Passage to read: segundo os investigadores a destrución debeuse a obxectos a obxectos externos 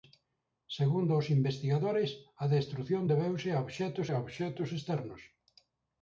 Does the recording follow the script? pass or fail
pass